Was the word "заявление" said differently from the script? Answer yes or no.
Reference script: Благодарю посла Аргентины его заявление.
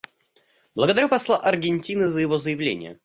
no